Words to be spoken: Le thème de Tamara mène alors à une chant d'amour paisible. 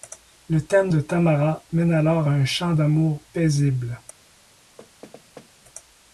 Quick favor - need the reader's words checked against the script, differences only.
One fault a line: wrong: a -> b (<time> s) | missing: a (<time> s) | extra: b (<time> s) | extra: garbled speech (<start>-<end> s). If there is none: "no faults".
wrong: une -> un (2.3 s)